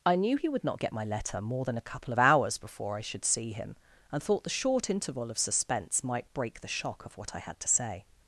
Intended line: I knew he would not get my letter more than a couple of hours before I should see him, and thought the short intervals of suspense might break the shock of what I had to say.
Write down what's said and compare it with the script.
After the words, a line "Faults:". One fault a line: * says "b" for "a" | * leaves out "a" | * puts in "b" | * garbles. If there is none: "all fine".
I knew he would not get my letter more than a couple of hours before I should see him, and thought the short interval of suspense might break the shock of what I had to say.
Faults:
* says "interval" for "intervals"